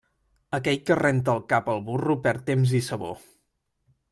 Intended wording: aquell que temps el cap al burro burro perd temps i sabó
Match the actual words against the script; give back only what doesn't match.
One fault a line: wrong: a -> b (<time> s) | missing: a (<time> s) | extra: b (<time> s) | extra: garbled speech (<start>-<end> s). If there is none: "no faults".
wrong: temps -> renta (1.0 s)
missing: burro (2.1 s)